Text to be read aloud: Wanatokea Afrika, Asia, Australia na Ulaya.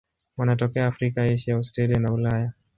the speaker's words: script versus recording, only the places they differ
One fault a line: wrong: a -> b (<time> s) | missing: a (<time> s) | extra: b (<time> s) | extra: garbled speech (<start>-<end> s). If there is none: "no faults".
no faults